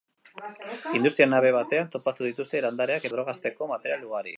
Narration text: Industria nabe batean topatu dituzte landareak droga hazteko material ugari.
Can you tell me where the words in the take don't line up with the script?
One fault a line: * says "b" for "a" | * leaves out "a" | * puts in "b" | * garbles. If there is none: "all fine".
all fine